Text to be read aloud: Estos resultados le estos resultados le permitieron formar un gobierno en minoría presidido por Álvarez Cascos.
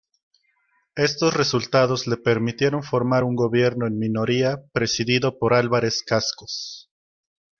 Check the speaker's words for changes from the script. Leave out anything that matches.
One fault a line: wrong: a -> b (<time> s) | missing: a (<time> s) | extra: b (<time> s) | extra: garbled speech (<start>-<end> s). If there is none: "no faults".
missing: estos resultados le (2.2 s)